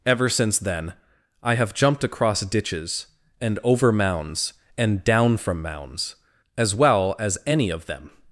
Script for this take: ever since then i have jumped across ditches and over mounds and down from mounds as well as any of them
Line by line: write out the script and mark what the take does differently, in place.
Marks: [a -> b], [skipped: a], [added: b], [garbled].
ever since then i have jumped across ditches and over mounds and down from mounds as well as any of them